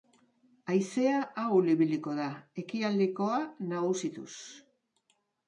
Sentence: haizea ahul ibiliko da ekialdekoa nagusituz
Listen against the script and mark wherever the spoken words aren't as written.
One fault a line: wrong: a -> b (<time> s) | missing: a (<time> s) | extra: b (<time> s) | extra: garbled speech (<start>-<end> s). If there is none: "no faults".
no faults